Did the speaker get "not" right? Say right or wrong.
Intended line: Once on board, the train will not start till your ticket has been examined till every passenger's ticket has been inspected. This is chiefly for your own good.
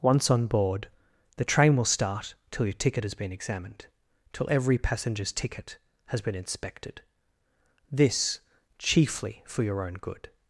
wrong